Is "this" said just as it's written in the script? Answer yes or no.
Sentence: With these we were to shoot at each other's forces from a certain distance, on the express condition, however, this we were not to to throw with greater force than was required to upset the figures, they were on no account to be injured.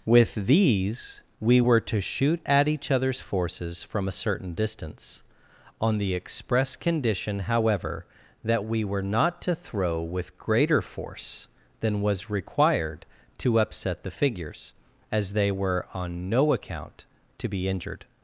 no